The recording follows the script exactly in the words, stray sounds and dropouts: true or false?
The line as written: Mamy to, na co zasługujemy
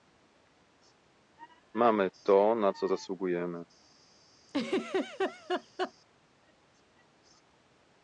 false